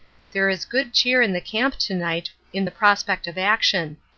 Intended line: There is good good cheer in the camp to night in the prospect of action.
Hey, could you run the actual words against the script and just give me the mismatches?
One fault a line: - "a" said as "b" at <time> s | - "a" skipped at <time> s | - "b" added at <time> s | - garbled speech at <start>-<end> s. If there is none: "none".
- "good" skipped at 0.9 s